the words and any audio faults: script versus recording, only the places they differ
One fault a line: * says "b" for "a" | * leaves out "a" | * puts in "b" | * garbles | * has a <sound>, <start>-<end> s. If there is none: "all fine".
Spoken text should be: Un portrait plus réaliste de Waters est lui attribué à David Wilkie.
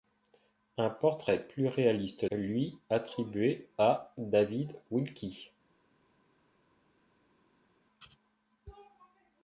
* leaves out "de Waters est"